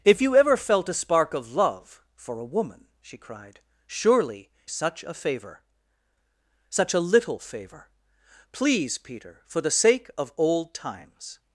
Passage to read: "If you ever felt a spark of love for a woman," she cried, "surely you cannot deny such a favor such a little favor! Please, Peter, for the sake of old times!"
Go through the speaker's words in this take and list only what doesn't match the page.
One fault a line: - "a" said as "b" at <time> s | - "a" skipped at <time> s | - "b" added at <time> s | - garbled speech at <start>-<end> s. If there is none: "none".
- "you cannot deny" skipped at 4.5 s